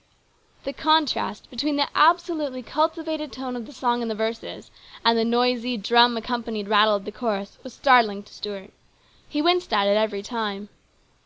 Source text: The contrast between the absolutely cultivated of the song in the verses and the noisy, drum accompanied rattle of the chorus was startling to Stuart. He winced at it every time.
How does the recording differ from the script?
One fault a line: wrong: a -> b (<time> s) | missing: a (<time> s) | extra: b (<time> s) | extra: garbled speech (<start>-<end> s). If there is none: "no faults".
extra: tone (3.3 s)